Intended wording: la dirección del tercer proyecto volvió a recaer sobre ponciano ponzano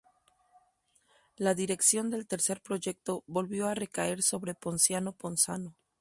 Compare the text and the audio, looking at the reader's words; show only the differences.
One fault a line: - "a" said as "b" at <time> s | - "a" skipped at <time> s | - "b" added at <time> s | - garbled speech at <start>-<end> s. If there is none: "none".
none